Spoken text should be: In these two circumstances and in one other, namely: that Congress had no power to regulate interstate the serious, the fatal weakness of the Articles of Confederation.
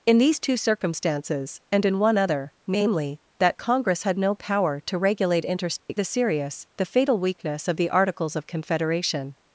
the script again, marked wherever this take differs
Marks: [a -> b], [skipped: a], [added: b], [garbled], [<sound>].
In these two circumstances and in one other, namely: that Congress had no power to regulate interstate [dropout] the serious, the fatal weakness of the Articles of Confederation.